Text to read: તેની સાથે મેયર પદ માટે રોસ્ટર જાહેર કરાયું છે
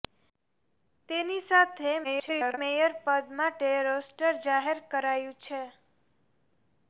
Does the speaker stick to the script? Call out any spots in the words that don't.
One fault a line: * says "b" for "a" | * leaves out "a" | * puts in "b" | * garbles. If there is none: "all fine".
* garbles